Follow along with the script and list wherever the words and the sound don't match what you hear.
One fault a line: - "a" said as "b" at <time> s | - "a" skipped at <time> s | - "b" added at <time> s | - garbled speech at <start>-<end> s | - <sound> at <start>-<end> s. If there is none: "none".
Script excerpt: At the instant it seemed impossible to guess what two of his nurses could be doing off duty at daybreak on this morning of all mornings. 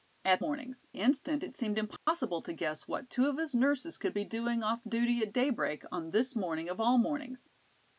- "the" said as "mornings" at 0.4 s
- dropout at 2.0-2.1 s